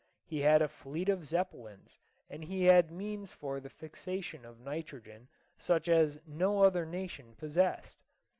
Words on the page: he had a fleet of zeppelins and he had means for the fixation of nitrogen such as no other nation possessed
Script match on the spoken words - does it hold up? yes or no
yes